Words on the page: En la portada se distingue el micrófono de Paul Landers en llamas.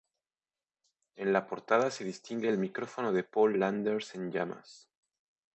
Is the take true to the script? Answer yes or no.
yes